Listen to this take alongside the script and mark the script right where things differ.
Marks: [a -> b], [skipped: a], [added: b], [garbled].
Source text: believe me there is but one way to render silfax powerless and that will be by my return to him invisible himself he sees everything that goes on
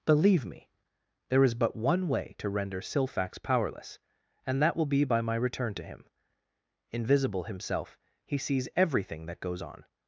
believe me there is but one way to render silfax powerless and that will be by my return to him invisible himself he sees everything that goes on